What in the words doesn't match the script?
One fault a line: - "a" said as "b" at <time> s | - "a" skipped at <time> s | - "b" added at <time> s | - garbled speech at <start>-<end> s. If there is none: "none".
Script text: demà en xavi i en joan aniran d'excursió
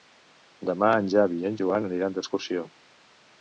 none